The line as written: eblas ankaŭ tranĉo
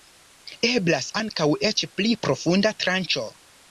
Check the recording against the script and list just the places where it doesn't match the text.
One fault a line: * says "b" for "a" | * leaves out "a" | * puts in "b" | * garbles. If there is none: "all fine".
* puts in "eĉ pli profunda"